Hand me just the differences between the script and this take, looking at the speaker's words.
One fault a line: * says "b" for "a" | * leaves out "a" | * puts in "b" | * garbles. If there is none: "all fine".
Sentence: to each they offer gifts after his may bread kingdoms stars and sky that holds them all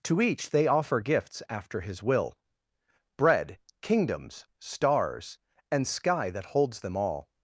* says "will" for "may"